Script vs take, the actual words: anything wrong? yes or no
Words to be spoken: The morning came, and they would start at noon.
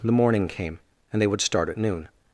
no